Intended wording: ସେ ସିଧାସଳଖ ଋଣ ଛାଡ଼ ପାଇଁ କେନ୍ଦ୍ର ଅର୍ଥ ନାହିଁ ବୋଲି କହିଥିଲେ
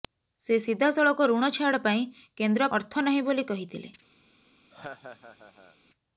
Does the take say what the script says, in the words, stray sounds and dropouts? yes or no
no